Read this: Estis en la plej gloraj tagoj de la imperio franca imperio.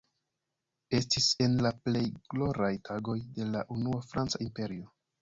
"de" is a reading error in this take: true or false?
false